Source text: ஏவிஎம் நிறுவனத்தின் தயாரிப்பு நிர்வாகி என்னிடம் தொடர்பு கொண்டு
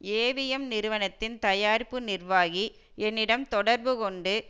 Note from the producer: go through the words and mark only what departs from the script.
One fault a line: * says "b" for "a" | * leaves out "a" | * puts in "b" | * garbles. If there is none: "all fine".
all fine